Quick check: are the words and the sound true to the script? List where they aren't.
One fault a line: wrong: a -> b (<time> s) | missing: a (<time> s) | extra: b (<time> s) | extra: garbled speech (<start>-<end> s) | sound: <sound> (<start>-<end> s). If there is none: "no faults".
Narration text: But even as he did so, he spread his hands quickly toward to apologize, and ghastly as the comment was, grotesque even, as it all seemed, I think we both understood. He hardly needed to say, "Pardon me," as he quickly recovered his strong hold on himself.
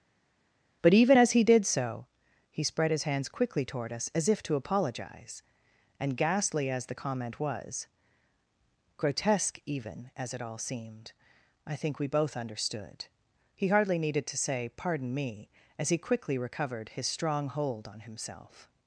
extra: us as if (3.9 s)